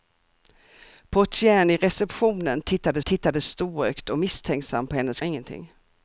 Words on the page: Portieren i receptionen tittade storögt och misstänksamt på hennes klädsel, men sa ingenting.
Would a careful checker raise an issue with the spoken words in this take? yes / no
yes